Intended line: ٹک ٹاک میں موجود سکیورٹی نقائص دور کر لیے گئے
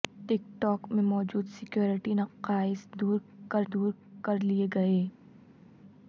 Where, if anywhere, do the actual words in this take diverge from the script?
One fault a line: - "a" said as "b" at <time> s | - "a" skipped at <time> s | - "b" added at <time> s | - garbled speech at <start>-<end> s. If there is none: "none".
- "دور کر" added at 3.7 s